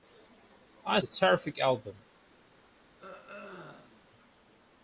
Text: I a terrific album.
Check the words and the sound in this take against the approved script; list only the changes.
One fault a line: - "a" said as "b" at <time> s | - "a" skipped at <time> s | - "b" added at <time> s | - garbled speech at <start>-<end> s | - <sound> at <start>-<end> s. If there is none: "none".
- throat clearing at 3.0-4.1 s